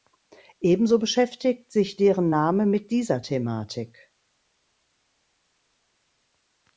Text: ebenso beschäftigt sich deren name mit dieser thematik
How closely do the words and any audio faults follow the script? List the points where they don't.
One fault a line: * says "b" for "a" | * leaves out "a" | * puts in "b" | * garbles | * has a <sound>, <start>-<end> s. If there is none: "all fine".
all fine